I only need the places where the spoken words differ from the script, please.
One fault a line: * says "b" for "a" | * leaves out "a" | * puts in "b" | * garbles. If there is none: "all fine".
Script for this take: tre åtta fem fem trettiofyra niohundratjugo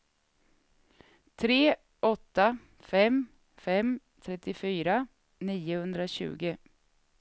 all fine